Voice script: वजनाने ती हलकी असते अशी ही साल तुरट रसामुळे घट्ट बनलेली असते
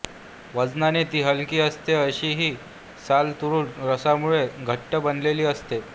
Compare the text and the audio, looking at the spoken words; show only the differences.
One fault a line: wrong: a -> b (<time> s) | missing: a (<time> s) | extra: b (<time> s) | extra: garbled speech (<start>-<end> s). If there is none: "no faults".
no faults